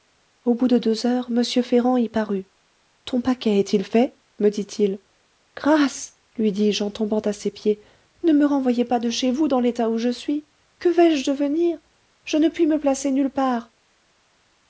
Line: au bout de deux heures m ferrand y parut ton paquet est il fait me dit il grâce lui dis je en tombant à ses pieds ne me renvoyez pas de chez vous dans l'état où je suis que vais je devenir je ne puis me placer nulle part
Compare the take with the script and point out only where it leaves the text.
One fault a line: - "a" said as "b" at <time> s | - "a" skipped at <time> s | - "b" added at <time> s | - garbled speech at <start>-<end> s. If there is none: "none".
none